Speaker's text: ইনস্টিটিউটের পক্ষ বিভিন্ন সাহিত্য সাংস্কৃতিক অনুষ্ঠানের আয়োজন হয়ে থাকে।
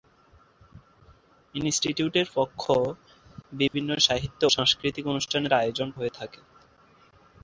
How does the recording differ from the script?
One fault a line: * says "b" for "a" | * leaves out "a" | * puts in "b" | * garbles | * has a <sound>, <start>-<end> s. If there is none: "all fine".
* has a dropout, 3.7-3.7 s